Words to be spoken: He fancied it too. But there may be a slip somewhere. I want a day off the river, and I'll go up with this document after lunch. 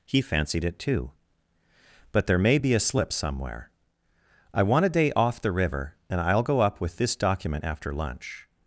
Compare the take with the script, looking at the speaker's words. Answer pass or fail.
pass